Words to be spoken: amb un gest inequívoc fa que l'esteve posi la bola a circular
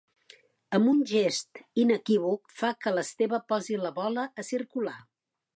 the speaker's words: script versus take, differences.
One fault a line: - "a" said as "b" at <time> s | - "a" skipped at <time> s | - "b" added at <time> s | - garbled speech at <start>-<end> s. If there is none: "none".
none